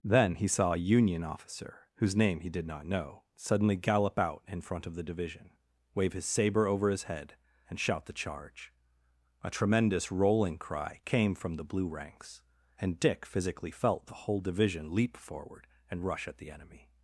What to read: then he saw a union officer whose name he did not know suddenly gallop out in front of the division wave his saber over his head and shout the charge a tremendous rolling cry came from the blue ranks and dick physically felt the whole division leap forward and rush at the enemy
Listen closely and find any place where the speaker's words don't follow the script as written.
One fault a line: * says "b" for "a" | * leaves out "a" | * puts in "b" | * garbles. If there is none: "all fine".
all fine